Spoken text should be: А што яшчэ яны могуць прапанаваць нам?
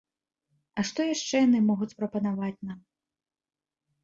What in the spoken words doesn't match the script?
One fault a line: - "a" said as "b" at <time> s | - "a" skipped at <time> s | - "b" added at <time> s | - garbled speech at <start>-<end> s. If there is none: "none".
none